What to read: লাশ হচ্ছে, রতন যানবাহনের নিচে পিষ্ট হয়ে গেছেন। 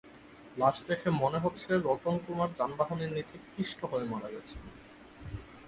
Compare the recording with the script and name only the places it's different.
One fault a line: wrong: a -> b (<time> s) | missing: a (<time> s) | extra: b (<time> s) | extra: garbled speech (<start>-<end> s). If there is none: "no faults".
extra: দেখে মনে (0.9 s)
extra: কুমার (2.2 s)
extra: মারা (4.0 s)